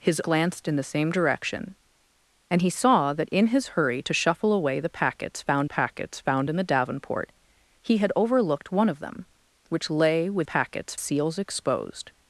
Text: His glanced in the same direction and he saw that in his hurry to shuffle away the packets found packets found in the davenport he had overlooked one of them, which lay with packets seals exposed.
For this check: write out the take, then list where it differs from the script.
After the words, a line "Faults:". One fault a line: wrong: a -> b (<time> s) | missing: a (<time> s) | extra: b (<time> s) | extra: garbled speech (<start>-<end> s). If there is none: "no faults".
His glanced in the same direction and he saw that in his hurry to shuffle away the packets found packets found in the davenport he had overlooked one of them, which lay with packets seals exposed.
Faults:
no faults